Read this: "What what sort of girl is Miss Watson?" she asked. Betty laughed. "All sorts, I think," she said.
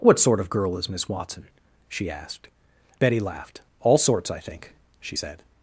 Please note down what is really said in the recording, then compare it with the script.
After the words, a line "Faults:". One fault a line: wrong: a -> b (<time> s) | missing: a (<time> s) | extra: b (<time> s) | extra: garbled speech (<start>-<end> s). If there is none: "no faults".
"What sort of girl is Miss Watson?" she asked. Betty laughed. "All sorts, I think," she said.
Faults:
missing: what (0.2 s)